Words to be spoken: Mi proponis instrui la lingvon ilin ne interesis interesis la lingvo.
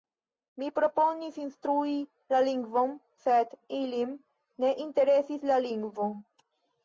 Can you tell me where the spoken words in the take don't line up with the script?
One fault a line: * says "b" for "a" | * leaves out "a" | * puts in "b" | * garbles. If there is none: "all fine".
* puts in "sed"
* leaves out "interesis"